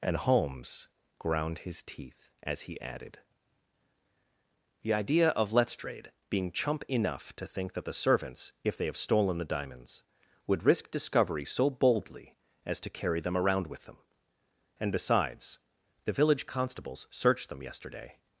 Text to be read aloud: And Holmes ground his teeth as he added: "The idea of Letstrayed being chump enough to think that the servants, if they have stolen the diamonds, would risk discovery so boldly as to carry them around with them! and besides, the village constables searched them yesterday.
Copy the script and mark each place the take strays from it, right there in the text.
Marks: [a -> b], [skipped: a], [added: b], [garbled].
And Holmes ground his teeth as he added: "The idea of Letstrayed being chump enough to think that the servants, if they have stolen the diamonds, would risk discovery so boldly as to carry them around with them! and besides, the village constables searched them yesterday.